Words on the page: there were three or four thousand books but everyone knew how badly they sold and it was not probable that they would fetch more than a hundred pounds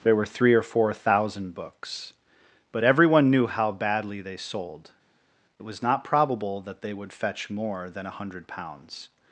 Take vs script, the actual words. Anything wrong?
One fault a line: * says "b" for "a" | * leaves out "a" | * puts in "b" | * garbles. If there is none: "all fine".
* leaves out "and"